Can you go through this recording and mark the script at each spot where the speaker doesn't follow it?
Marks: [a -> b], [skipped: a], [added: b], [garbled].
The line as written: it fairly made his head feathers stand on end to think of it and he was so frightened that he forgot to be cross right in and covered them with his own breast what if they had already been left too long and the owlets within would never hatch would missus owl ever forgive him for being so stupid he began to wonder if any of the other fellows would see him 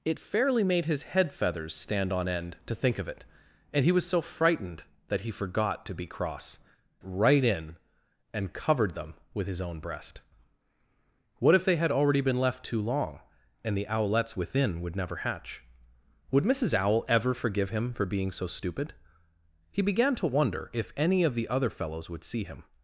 it fairly made his head feathers stand on end to think of it and he was so frightened that he forgot to be cross right in and covered them with his own breast what if they had already been left too long and the owlets within would never hatch would missus owl ever forgive him for being so stupid he began to wonder if any of the other fellows would see him